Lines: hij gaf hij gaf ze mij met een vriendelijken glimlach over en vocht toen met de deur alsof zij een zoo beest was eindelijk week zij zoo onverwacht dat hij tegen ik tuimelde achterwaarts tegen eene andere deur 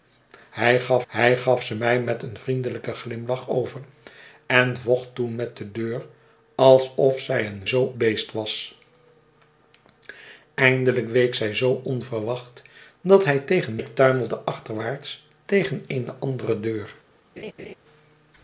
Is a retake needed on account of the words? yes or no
no